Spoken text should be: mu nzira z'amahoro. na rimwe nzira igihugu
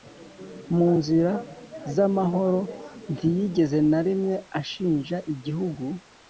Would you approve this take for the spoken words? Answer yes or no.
no